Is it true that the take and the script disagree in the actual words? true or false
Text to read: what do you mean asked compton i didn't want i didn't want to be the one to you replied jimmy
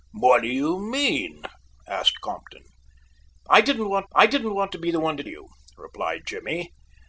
false